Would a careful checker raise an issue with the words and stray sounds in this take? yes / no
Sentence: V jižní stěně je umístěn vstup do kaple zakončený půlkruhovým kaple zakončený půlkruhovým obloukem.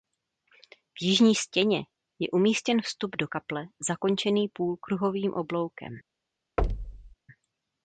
yes